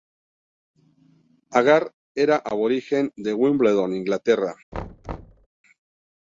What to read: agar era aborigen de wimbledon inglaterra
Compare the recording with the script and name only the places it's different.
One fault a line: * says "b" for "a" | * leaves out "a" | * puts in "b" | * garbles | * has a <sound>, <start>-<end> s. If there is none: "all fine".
* has a thud, 4.7-5.5 s